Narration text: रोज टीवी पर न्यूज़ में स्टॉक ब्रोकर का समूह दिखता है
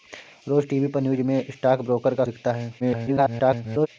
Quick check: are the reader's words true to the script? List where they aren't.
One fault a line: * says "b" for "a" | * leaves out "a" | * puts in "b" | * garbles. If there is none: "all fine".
* leaves out "समूह"
* garbles